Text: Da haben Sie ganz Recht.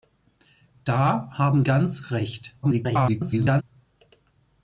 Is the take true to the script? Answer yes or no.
no